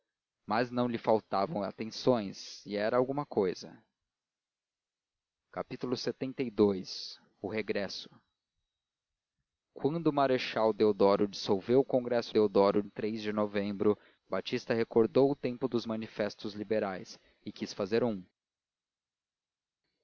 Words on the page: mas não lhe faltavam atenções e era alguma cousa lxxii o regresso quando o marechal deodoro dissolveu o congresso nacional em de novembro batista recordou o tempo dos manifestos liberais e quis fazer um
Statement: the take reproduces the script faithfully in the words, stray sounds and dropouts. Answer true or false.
false